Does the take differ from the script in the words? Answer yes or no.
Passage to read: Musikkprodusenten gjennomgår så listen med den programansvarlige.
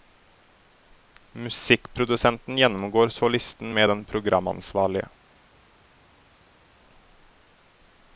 no